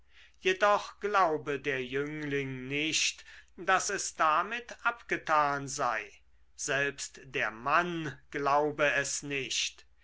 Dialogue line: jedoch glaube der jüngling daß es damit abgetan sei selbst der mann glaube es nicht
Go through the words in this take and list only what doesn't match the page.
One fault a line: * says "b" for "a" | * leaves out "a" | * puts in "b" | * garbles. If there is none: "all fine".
* puts in "nicht"